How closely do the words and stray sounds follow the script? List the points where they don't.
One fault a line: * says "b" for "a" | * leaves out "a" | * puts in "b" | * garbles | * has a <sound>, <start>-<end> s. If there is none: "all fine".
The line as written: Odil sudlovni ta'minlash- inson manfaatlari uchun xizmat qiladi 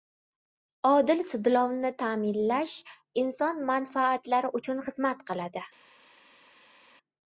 all fine